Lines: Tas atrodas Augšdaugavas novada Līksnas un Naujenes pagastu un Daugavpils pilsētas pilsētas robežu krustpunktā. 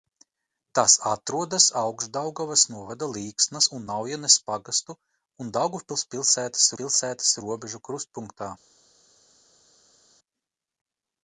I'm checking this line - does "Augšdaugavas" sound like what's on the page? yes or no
yes